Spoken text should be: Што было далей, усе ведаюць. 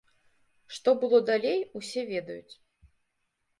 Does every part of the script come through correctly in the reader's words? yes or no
yes